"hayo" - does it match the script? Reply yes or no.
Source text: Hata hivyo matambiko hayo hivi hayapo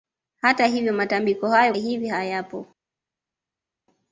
yes